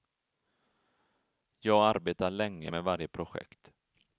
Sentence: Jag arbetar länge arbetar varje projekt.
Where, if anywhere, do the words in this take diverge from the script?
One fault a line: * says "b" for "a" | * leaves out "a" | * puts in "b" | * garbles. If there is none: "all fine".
* says "med" for "arbetar"